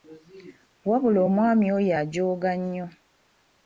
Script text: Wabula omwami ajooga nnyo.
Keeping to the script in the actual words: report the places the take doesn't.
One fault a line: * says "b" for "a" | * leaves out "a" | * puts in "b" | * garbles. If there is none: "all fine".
* puts in "oyo"